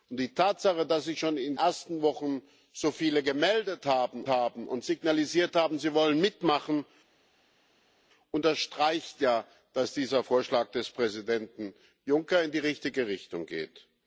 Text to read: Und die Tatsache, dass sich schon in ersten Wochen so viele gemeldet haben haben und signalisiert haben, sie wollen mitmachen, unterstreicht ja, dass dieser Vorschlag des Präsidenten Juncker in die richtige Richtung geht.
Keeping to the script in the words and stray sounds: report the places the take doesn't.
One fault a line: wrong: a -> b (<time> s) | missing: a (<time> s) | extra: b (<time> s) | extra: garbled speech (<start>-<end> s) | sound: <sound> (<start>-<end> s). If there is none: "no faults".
no faults